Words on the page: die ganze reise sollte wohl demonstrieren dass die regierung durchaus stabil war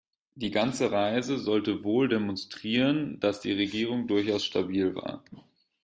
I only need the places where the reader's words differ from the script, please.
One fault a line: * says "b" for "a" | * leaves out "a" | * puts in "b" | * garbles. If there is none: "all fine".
all fine